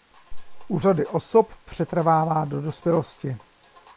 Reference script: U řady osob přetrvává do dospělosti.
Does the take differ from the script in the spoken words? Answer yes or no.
no